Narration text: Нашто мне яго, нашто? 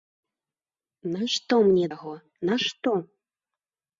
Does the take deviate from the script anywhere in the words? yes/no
no